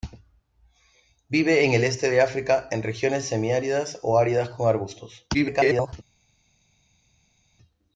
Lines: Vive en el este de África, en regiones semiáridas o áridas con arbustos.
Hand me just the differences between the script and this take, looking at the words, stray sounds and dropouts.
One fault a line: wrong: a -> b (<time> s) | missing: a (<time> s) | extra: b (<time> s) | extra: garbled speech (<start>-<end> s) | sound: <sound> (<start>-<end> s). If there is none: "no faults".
extra: garbled speech (5.3-5.9 s)